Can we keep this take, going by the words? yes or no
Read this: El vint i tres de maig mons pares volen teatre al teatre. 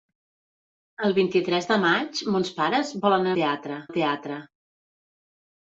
yes